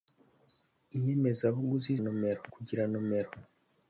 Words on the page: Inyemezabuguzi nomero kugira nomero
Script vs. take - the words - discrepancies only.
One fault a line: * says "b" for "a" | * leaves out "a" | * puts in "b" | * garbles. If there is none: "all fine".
all fine